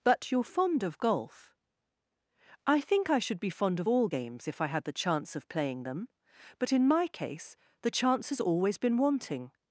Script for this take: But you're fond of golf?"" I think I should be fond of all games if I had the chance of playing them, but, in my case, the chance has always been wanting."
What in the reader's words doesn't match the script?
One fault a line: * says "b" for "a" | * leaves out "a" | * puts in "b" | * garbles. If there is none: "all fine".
all fine